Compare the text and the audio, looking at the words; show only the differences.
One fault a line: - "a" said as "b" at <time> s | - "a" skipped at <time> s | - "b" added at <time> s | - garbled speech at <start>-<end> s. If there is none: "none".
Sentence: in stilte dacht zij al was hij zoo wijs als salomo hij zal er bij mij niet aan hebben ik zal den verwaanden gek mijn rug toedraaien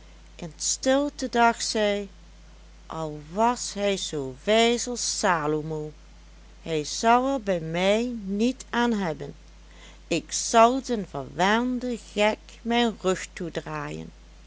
none